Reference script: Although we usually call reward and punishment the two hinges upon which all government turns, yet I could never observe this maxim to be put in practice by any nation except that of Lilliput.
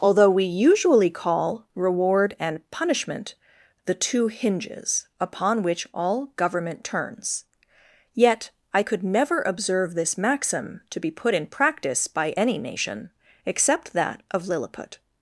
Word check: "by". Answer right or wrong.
right